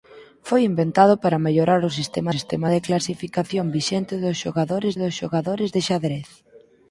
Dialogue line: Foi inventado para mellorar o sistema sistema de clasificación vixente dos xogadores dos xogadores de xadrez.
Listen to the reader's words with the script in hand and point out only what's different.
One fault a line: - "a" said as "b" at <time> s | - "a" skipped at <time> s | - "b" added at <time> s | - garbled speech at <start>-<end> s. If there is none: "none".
none